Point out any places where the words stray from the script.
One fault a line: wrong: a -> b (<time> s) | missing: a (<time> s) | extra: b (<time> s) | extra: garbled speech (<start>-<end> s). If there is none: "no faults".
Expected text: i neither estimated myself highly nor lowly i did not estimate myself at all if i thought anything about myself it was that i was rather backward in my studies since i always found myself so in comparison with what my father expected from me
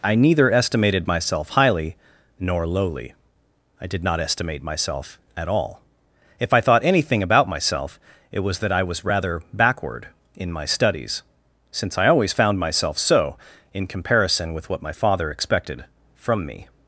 no faults